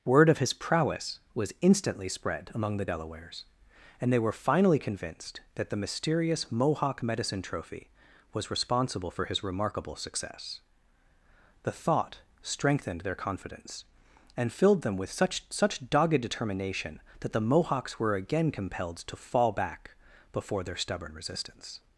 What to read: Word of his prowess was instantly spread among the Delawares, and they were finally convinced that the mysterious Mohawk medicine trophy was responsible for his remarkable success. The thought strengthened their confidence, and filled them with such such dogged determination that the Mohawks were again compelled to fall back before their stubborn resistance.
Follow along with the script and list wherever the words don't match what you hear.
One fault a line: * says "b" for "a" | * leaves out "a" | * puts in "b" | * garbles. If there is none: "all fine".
all fine